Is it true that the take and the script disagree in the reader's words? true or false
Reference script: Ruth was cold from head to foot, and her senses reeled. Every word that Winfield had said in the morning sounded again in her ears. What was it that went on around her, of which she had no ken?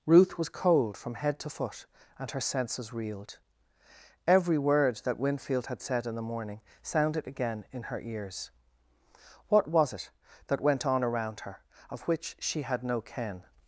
false